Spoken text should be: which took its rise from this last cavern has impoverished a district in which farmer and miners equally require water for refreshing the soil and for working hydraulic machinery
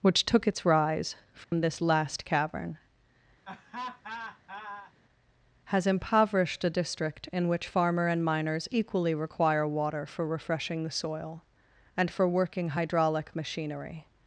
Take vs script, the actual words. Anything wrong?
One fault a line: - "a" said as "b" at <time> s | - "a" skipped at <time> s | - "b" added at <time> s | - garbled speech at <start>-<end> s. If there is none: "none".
none